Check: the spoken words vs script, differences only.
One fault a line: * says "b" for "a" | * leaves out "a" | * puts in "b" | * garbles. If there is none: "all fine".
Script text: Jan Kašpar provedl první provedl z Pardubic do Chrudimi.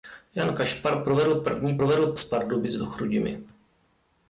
all fine